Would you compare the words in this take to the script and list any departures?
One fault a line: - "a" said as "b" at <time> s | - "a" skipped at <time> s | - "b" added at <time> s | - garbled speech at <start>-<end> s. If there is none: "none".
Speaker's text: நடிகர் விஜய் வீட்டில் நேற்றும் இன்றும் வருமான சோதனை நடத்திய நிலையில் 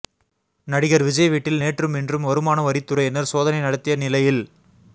- "வரித்துறையினர்" added at 2.6 s